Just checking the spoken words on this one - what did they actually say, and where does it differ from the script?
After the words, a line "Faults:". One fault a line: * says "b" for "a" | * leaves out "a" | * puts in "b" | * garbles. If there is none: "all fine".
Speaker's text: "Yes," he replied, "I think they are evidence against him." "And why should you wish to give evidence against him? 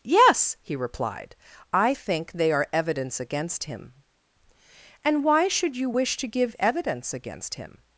"Yes," he replied, "I think they are evidence against him." "And why should you wish to give evidence against him?
Faults:
all fine